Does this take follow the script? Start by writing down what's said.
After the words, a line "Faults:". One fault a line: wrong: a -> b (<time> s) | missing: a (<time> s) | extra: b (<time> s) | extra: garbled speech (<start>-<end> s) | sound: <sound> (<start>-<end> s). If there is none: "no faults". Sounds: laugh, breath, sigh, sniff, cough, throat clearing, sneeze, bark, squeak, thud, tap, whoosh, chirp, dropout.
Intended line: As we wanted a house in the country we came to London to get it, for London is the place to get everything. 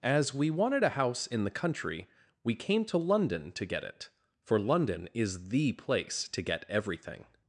As we wanted a house in the country we came to London to get it, for London is the place to get everything.
Faults:
no faults